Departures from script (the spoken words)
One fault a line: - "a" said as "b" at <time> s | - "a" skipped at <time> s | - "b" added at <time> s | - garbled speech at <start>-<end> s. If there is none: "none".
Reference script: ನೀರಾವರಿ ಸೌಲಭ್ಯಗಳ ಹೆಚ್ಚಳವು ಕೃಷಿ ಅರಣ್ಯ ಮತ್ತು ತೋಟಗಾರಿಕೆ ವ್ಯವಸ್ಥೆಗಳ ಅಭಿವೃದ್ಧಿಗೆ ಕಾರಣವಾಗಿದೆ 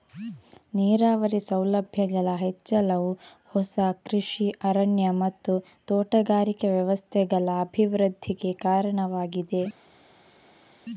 - "ಹೊಸ" added at 3.5 s